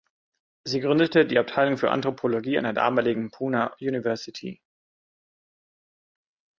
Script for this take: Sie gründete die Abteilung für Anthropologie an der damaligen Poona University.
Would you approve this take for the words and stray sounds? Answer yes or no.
yes